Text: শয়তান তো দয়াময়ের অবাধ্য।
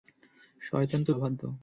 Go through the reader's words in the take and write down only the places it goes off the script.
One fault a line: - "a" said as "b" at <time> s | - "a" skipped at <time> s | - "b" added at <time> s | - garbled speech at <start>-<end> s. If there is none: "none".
- "দয়াময়ের" skipped at 1.1 s